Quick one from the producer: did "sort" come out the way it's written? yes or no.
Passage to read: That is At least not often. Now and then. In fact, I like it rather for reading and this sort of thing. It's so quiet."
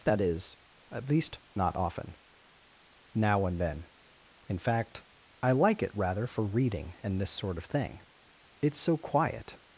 yes